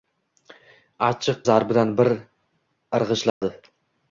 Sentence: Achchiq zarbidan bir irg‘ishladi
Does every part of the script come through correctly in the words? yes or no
yes